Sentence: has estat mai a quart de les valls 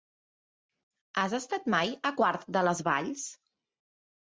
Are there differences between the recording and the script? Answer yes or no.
no